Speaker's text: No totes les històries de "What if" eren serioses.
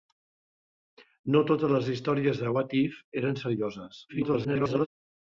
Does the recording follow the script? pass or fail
fail